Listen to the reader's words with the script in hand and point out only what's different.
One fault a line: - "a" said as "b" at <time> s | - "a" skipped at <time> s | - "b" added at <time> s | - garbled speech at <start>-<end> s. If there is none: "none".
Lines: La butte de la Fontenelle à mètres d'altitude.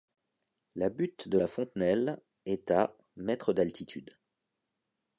- "est" added at 2.4 s